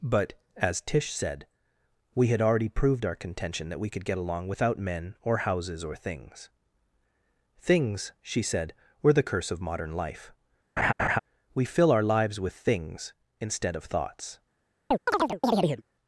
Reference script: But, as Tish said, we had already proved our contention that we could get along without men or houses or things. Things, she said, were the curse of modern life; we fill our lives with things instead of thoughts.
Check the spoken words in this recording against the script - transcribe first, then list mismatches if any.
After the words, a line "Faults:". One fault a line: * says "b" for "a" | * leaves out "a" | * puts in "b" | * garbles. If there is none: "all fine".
But, as Tish said, we had already proved our contention that we could get along without men or houses or things. Things, she said, were the curse of modern life; we fill our lives with things instead of thoughts.
Faults:
all fine